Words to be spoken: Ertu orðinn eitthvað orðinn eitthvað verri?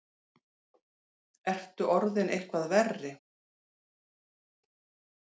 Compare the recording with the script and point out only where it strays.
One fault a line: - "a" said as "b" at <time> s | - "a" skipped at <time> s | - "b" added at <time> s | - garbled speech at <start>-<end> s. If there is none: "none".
- "orðinn eitthvað" skipped at 2.7 s